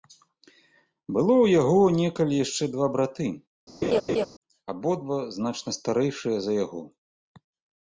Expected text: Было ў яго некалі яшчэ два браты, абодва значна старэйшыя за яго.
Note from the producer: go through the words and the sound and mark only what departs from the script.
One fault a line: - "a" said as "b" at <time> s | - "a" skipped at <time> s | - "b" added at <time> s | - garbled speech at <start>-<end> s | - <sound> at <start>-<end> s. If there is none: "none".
- laugh at 3.8-4.3 s